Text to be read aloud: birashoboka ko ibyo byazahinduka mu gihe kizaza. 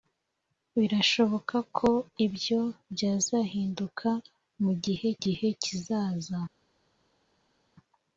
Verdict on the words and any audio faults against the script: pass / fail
fail